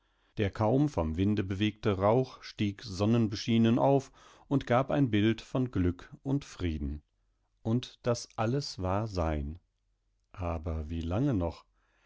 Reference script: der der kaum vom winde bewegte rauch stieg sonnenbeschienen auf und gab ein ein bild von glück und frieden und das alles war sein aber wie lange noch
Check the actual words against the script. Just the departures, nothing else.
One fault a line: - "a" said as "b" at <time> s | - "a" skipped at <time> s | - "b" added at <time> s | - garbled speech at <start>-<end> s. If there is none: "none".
- "der" skipped at 0.5 s
- "ein" skipped at 5.1 s